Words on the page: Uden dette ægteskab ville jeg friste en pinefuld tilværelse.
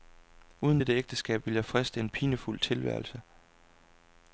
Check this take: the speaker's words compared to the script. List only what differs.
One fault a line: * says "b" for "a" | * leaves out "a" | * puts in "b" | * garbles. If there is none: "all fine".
all fine